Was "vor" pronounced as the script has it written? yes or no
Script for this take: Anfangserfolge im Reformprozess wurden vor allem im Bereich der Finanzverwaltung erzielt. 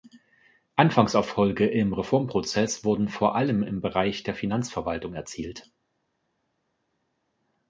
yes